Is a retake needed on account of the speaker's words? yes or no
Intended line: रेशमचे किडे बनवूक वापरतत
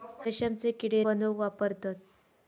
no